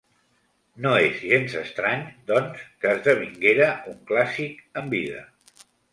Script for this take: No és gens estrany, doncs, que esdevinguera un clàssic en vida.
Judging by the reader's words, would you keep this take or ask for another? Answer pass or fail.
pass